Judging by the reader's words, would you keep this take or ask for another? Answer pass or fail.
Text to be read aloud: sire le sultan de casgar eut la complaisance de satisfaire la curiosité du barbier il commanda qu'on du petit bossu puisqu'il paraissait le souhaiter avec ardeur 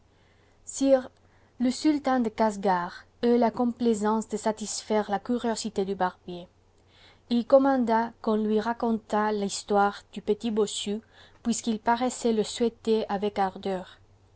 fail